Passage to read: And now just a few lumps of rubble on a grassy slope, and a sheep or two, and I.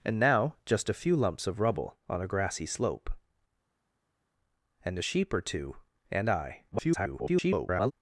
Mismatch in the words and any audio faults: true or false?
true